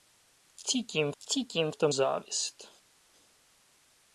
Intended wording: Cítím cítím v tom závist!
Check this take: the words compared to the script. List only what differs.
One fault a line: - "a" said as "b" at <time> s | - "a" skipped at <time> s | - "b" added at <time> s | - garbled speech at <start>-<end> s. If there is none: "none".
none